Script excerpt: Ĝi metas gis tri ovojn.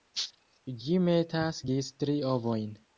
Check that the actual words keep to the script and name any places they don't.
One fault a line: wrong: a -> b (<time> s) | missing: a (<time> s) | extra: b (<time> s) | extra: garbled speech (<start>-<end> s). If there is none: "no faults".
no faults